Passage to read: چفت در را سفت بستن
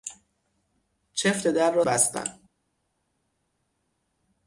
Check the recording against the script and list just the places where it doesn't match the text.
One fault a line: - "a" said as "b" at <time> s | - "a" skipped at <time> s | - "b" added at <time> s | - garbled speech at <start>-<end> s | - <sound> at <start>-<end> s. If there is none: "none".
- "سفت" skipped at 1.9 s